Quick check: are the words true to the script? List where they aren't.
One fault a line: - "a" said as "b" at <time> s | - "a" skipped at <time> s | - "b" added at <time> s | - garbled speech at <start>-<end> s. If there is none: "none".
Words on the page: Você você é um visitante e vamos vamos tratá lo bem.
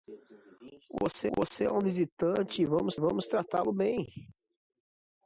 none